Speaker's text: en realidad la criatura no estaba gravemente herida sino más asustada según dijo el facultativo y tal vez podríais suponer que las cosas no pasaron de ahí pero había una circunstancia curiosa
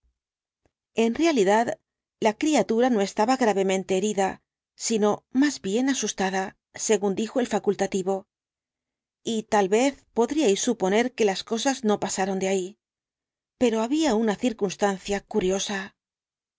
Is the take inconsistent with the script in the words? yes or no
yes